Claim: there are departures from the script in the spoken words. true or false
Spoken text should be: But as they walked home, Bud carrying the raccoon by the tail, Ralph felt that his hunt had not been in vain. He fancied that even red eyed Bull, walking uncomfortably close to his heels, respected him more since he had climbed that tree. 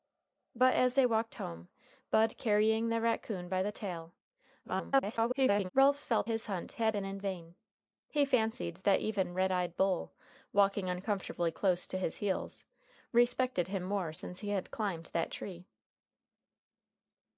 true